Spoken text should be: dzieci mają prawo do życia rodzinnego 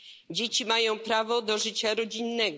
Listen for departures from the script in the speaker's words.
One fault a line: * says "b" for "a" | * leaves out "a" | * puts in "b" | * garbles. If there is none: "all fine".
all fine